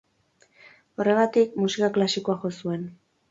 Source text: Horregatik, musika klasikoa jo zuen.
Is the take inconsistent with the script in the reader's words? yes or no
no